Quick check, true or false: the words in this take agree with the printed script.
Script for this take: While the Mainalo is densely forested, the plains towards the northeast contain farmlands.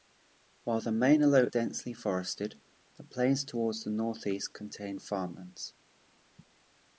false